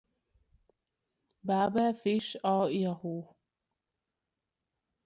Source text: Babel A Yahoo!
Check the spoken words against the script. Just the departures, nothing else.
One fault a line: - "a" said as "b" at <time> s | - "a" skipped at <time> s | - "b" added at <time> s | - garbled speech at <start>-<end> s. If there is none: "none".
- "Fish" added at 1.9 s